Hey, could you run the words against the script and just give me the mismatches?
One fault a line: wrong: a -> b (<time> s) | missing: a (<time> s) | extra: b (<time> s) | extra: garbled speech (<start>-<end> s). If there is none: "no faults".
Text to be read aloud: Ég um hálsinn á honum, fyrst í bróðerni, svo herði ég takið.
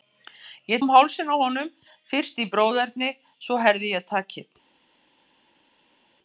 no faults